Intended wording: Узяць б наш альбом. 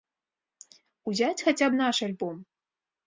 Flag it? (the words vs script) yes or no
yes